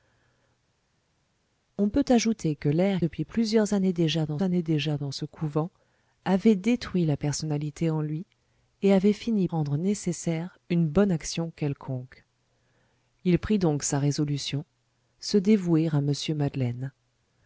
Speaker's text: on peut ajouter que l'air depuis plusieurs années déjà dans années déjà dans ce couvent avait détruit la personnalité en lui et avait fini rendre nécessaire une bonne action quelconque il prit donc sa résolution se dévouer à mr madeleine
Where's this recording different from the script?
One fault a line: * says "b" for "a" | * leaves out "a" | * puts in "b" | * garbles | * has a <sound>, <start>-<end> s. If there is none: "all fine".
all fine